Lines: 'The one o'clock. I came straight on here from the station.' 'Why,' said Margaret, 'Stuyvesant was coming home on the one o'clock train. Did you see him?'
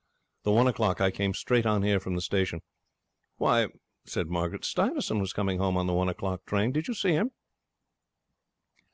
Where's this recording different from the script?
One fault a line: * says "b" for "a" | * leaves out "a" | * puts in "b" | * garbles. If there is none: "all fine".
all fine